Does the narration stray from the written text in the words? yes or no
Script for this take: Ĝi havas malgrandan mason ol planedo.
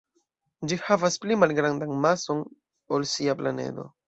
yes